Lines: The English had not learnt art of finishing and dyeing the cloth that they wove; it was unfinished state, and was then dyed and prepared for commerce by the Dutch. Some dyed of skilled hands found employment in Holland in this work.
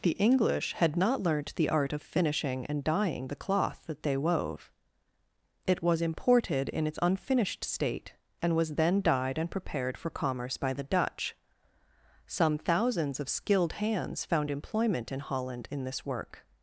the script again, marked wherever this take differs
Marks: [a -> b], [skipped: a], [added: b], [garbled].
The English had not learnt [added: the] art of finishing and dyeing the cloth that they wove; it was [added: imported in its] unfinished state, and was then dyed and prepared for commerce by the Dutch. Some [dyed -> thousands] of skilled hands found employment in Holland in this work.